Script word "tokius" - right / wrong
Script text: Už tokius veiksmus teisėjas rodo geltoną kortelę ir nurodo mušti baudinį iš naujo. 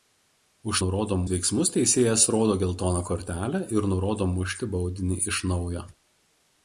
wrong